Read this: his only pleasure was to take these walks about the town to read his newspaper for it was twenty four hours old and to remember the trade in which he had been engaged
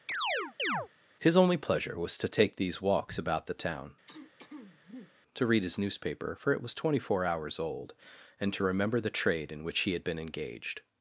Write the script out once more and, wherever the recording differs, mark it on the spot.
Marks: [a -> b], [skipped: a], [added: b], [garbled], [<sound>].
[chirp] his only pleasure was to take these walks about the town [throat clearing] to read his newspaper for it was twenty four hours old and to remember the trade in which he had been engaged